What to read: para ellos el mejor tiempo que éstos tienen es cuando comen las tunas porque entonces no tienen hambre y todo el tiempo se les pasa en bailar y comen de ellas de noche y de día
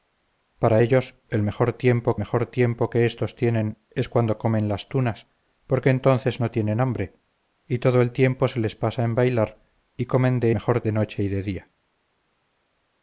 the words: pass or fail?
fail